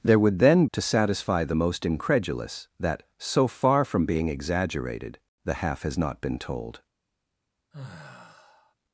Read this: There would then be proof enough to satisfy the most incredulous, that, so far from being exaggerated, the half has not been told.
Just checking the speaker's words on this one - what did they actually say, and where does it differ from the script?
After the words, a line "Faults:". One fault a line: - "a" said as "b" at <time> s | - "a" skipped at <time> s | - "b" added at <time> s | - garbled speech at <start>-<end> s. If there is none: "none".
There would then to satisfy the most incredulous, that, so far from being exaggerated, the half has not been told.
Faults:
- "be proof enough" skipped at 0.7 s